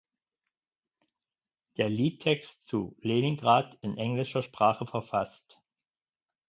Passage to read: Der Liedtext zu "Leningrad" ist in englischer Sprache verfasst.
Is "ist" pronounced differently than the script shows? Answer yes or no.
yes